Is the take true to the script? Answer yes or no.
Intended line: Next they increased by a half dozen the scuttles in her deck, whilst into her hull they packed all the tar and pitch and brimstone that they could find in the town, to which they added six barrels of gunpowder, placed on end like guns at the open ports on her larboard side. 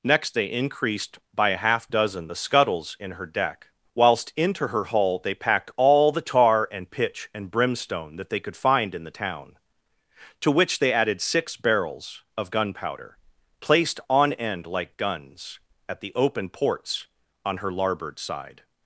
yes